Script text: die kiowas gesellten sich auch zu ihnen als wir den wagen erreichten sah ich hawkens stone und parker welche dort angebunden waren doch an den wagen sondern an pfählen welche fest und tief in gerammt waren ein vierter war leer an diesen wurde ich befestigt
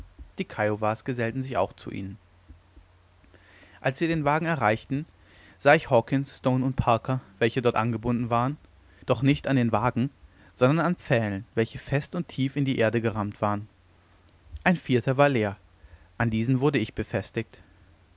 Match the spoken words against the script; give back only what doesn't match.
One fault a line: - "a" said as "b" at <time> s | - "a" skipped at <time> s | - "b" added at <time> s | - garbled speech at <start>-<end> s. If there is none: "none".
- "nicht" added at 9.2 s
- "die erde" added at 12.7 s